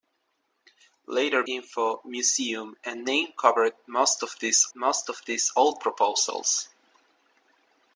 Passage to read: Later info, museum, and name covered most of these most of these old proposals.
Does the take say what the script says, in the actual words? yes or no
yes